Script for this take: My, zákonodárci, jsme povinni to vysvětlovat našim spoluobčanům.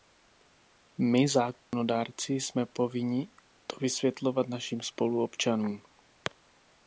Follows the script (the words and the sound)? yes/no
no